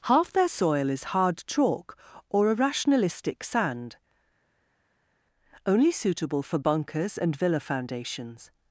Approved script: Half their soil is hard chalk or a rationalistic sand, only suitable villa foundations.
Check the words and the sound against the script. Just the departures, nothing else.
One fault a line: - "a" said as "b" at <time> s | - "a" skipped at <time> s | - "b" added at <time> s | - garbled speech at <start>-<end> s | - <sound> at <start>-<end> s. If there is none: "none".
- "for bunkers and" added at 6.4 s